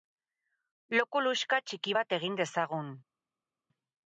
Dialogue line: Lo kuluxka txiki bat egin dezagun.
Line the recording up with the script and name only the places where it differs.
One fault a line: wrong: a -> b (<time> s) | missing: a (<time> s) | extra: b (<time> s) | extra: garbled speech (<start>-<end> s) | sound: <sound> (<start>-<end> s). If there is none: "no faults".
no faults